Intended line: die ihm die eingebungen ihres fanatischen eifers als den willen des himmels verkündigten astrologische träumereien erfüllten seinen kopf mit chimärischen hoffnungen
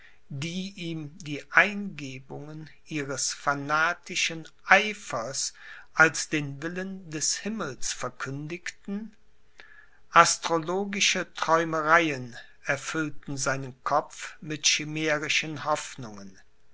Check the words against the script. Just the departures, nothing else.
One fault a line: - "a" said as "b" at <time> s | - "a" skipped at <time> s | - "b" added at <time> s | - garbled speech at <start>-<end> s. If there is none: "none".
none